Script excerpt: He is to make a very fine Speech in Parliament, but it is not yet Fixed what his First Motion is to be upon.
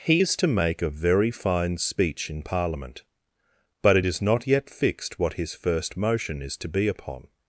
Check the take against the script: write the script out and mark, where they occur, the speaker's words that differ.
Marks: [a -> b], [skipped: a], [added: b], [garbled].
He is to make a very fine Speech in Parliament, but it is not yet Fixed what his First Motion is to be upon.